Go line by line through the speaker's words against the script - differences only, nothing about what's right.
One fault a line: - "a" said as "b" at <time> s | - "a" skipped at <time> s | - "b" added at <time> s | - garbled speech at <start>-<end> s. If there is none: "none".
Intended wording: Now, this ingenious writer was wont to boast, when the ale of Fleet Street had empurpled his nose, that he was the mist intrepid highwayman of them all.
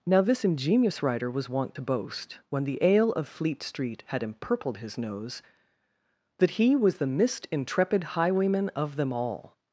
none